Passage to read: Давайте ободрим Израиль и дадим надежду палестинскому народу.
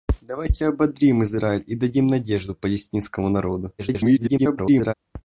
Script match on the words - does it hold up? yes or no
no